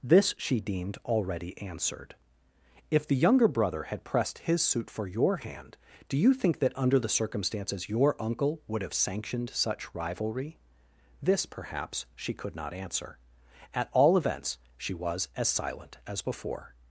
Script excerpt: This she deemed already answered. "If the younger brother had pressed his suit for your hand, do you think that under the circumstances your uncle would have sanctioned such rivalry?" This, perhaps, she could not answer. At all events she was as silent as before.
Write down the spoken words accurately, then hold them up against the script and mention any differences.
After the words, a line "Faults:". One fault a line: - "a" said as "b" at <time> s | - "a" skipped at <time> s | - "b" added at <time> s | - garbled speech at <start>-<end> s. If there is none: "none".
This she deemed already answered. "If the younger brother had pressed his suit for your hand, do you think that under the circumstances your uncle would have sanctioned such rivalry?" This, perhaps, she could not answer. At all events she was as silent as before.
Faults:
none